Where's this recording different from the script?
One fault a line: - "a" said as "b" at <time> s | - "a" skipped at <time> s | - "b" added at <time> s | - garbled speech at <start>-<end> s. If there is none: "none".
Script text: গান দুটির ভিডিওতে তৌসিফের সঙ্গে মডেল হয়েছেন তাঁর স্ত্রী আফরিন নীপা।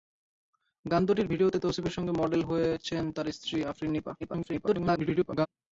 - garbled speech at 4.2-5.5 s